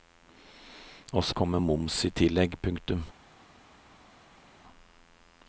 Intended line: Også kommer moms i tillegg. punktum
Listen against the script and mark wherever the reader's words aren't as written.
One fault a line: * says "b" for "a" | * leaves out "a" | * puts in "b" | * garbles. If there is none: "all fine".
all fine